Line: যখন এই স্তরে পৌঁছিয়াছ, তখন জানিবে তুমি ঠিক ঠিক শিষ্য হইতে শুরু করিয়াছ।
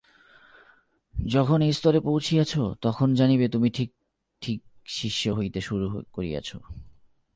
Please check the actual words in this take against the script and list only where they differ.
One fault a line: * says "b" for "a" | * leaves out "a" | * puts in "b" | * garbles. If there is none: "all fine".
all fine